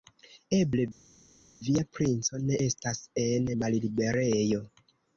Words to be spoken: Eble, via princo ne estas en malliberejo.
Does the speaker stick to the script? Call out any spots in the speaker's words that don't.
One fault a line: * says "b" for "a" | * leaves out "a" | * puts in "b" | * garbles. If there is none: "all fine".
all fine